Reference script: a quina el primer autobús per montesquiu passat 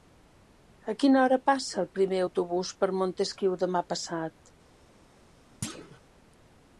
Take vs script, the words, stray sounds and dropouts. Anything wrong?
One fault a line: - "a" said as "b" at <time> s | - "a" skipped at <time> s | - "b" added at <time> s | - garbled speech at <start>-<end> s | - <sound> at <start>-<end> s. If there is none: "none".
- "hora passa" added at 1.2 s
- "demà" added at 3.6 s
- thud at 5.6-6.0 s